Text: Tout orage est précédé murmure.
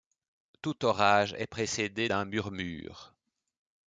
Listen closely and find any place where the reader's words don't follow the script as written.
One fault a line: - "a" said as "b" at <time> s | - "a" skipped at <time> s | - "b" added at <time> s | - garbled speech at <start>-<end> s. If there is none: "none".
- "d'un" added at 2.0 s